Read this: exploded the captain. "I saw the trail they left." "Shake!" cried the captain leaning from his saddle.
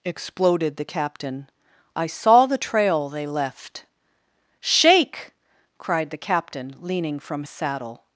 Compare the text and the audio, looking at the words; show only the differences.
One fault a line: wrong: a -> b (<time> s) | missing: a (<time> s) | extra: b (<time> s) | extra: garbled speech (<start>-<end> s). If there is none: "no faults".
missing: his (7.5 s)